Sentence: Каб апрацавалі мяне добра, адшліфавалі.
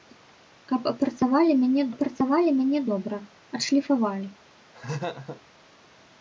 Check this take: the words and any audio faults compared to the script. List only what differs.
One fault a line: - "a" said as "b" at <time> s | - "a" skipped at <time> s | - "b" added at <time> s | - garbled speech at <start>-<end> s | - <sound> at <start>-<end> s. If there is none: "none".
- "апрацавалі мяне" added at 1.9 s
- laugh at 4.7-5.4 s